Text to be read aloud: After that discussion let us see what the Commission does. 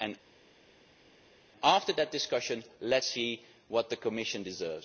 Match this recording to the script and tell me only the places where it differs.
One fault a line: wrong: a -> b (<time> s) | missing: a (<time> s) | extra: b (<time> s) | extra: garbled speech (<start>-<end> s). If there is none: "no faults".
no faults